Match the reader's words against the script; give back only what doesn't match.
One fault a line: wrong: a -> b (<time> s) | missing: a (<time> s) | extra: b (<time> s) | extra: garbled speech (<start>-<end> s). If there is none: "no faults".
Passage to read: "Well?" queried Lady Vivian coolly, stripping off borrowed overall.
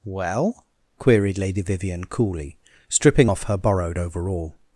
extra: her (3.4 s)